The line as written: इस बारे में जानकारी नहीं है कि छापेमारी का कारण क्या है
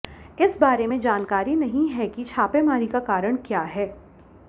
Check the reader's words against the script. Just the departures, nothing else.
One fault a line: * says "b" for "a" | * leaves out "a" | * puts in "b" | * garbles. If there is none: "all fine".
all fine